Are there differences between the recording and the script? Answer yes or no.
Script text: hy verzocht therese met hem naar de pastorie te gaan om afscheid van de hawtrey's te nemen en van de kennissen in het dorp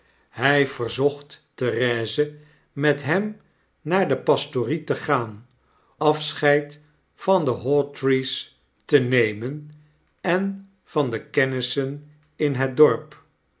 yes